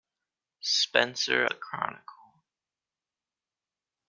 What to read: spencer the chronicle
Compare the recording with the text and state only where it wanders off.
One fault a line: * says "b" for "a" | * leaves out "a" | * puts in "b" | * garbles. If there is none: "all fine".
all fine